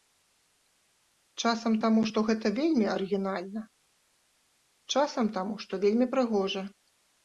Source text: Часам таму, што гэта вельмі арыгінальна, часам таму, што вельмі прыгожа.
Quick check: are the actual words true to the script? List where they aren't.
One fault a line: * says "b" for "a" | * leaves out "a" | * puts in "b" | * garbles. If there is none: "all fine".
all fine